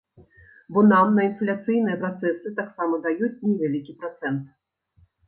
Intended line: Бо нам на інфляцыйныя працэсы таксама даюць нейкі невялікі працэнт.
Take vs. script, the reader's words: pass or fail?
fail